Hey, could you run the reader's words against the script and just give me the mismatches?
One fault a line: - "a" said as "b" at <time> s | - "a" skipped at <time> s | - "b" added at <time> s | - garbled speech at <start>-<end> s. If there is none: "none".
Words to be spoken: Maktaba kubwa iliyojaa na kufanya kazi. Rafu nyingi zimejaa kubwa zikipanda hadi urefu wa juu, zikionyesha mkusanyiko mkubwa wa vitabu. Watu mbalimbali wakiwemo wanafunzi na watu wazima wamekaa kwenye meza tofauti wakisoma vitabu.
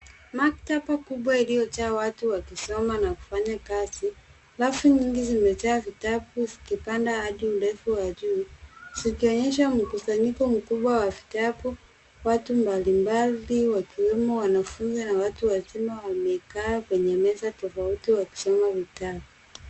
- "watu wakisoma" added at 1.9 s
- "kubwa" said as "vitabu" at 5.8 s